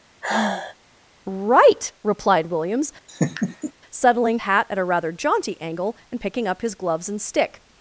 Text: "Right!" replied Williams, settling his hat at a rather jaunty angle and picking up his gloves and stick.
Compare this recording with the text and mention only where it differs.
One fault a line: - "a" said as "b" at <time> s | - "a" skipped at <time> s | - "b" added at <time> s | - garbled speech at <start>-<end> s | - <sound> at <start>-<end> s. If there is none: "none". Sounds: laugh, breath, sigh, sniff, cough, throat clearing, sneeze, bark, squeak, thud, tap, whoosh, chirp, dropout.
- sigh at 0.2-0.8 s
- laugh at 3.1-3.7 s
- "his" skipped at 4.4 s